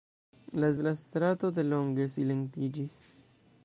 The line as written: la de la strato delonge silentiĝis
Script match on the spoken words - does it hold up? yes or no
yes